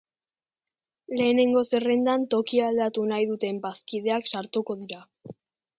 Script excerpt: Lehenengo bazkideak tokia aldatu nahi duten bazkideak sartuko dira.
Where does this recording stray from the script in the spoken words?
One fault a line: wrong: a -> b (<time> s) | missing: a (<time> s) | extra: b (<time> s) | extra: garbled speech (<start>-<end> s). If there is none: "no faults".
wrong: bazkideak -> zerrendan (1.7 s)